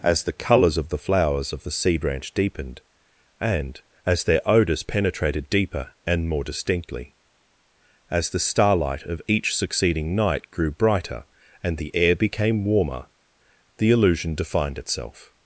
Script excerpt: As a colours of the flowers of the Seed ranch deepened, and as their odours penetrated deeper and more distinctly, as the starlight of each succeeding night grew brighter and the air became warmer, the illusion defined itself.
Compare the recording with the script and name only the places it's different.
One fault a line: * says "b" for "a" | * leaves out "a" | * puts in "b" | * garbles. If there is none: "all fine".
* says "the" for "a"